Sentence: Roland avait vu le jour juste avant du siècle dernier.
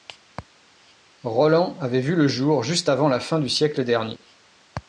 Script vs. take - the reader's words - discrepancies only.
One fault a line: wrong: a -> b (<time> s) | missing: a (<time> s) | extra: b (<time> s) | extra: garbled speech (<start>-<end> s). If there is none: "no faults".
extra: la fin (3.1 s)